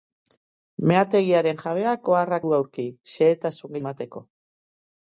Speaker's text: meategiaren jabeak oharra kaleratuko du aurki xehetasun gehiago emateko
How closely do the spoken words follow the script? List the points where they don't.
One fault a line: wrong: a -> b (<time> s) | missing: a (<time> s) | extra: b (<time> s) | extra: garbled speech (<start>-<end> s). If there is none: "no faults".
missing: kaleratuko (2.4 s)
missing: gehiago (3.8 s)